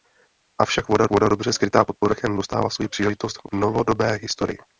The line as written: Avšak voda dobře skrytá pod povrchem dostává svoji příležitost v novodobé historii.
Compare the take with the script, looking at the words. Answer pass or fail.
fail